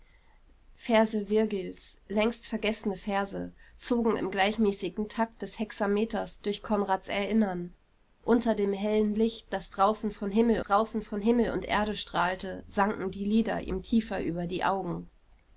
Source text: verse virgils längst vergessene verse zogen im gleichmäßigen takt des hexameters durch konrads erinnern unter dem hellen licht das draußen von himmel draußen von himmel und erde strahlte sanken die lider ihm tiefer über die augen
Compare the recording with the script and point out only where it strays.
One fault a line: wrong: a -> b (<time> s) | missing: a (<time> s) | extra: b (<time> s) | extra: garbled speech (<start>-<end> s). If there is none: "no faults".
no faults